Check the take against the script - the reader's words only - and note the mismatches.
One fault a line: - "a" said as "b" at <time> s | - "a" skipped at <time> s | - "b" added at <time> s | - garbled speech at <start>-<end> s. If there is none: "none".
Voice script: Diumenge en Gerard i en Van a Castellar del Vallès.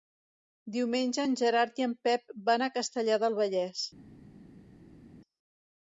- "Pep" added at 2.1 s